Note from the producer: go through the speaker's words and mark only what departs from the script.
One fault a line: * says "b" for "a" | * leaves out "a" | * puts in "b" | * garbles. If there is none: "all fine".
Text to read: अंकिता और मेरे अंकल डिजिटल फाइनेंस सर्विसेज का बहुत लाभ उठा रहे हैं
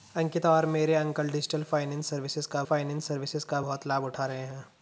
* puts in "फाइनेंस सर्विसेज का"